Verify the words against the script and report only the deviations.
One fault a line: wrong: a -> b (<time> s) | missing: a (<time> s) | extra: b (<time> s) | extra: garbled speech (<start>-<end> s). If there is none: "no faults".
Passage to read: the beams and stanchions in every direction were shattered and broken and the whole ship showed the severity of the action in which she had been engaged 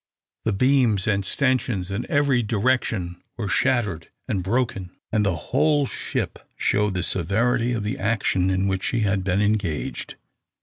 no faults